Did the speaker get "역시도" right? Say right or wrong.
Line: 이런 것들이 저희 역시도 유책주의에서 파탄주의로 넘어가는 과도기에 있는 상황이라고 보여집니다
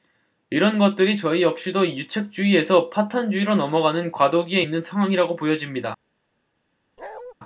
right